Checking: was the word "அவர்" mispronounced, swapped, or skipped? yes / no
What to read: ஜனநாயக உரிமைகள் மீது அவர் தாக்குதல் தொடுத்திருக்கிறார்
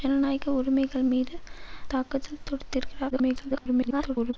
yes